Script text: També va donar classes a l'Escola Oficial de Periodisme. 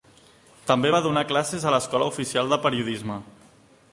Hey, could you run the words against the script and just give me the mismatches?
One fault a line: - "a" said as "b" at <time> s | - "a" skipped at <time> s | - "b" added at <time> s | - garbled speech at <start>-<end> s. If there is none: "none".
none